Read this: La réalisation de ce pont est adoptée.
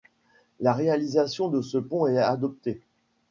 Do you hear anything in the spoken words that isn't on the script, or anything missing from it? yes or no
no